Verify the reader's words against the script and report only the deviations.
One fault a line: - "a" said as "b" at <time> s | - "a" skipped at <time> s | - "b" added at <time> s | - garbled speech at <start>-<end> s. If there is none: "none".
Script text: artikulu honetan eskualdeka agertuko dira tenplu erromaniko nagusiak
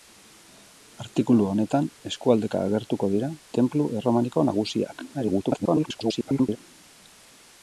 - garbled speech at 5.1-6.6 s